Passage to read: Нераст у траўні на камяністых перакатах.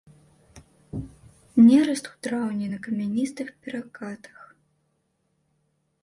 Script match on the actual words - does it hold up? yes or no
yes